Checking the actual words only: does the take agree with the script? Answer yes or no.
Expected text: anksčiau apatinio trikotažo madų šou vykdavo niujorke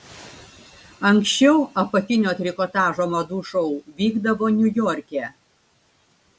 yes